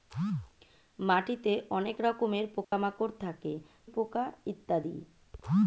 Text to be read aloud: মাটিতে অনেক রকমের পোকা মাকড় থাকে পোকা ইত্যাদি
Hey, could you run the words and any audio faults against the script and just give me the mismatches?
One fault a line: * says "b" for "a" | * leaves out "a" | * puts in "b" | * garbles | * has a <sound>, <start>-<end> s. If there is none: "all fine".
* has a dropout, 2.6-2.7 s